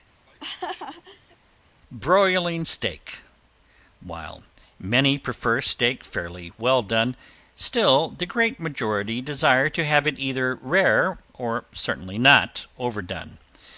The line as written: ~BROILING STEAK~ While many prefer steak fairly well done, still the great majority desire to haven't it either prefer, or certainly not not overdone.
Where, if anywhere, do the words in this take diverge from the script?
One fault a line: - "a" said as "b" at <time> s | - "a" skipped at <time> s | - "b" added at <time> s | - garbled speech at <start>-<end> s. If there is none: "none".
- "haven't" said as "have" at 9.8 s
- "prefer" said as "rare" at 10.6 s
- "not" skipped at 12.7 s